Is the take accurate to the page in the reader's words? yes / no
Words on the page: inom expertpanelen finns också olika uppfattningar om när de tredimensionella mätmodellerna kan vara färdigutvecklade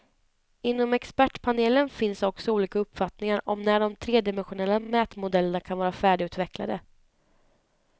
yes